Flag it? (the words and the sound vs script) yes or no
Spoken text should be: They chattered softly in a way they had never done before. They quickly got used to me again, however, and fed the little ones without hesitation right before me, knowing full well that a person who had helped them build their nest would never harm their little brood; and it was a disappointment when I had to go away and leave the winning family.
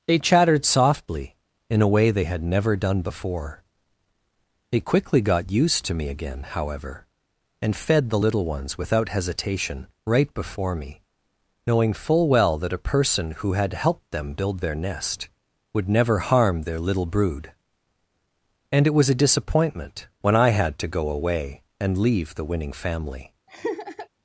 yes